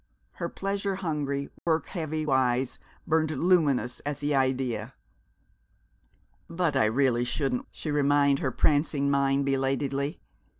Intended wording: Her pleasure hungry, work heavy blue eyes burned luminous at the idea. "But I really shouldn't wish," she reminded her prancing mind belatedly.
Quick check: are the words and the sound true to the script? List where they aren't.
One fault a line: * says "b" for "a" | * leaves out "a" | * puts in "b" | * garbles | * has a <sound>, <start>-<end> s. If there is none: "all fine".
* has a dropout, 1.6-1.7 s
* leaves out "blue"
* leaves out "wish"